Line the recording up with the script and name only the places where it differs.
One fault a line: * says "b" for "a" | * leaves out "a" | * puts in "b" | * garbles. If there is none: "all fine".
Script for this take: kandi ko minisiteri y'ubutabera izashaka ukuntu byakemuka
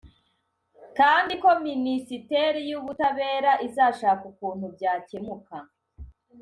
all fine